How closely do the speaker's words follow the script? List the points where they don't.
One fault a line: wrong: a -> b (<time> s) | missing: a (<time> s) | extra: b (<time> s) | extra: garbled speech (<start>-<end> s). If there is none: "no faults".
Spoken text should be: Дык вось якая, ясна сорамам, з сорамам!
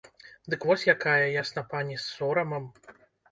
wrong: сорамам -> пані (1.7 s)